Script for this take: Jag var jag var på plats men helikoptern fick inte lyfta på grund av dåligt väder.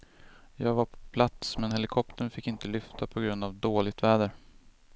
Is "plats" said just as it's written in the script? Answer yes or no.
yes